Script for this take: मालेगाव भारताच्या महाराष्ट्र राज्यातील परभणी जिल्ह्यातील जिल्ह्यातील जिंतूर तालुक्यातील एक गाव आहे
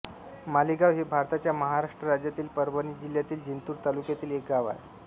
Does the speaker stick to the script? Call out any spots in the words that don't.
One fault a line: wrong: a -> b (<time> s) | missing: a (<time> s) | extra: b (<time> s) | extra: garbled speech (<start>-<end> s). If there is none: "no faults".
extra: हे (0.9 s)
missing: जिल्ह्यातील (3.4 s)